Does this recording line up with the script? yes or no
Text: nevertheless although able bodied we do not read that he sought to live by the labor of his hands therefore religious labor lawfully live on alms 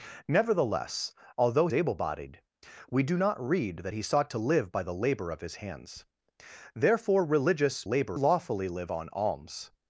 yes